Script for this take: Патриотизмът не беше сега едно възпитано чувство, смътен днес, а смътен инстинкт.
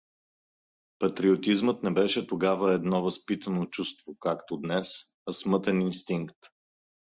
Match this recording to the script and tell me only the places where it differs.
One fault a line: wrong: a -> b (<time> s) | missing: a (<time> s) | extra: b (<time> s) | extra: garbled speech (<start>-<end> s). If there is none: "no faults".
wrong: сега -> тогава (2.3 s)
wrong: смътен -> както (4.2 s)